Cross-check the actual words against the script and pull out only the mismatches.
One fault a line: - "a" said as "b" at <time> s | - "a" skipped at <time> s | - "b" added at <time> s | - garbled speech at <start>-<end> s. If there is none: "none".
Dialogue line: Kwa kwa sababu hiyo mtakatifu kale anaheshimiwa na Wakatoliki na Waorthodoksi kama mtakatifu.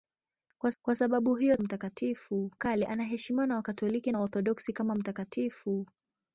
none